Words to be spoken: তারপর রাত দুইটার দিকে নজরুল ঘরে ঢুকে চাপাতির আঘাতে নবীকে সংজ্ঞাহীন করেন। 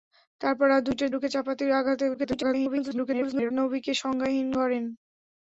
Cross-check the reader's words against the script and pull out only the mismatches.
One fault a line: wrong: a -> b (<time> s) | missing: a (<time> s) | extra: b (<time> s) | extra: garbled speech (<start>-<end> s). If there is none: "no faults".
missing: দিকে নজরুল ঘরে (1.1 s)
extra: garbled speech (2.1-3.5 s)